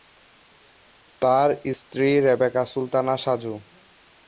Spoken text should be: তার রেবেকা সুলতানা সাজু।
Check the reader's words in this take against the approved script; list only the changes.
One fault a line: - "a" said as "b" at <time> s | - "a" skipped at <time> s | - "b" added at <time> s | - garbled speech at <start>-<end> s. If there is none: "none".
- "স্ত্রী" added at 1.8 s